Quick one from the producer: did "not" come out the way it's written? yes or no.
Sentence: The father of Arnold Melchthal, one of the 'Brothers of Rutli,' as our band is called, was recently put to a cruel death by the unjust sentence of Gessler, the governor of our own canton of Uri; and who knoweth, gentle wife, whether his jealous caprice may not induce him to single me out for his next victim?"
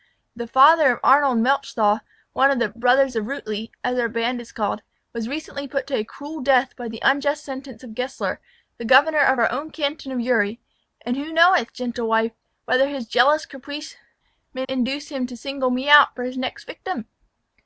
no